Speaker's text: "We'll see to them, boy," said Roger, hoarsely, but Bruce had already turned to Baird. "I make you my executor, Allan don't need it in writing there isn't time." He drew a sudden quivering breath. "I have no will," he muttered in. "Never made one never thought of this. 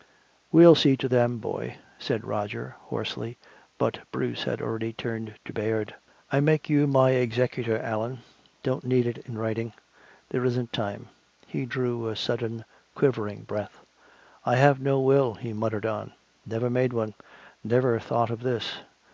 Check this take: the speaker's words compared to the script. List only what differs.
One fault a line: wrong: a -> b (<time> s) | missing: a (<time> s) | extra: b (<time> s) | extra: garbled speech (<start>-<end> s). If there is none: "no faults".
wrong: in -> on (15.9 s)